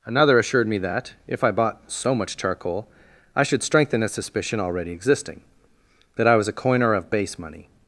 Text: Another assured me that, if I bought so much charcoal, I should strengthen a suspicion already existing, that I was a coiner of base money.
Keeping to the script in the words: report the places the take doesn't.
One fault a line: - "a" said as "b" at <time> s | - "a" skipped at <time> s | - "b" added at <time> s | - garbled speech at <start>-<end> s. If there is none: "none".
none